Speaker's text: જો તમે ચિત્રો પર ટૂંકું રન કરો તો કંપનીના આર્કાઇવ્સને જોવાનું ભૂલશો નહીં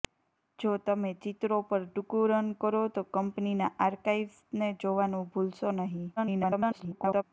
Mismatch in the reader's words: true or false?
true